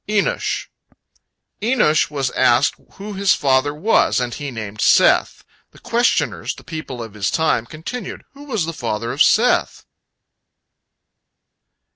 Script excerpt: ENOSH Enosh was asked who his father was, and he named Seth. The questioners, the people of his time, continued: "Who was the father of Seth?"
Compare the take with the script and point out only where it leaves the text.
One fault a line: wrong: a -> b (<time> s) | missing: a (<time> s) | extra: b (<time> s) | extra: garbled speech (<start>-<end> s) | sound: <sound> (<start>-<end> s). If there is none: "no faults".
no faults